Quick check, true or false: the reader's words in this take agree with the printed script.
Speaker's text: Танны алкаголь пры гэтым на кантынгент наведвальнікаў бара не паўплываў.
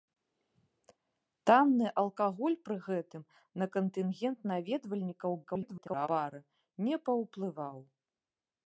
false